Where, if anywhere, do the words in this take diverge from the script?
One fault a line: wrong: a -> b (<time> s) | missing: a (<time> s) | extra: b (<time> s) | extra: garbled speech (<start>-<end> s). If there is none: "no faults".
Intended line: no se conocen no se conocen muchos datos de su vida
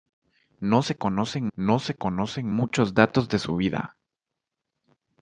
no faults